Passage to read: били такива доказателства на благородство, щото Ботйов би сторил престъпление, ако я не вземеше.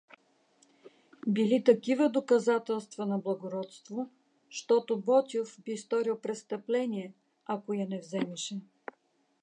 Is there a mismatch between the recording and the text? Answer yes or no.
no